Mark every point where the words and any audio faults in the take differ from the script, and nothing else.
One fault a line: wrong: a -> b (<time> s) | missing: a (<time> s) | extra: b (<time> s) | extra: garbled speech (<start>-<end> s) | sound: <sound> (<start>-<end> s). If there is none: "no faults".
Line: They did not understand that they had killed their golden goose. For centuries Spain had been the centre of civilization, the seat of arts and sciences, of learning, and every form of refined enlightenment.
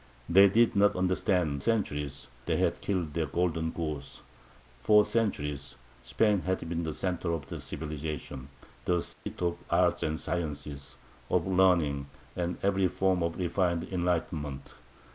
wrong: that -> centuries (1.6 s)
sound: dropout (9.1-9.3 s)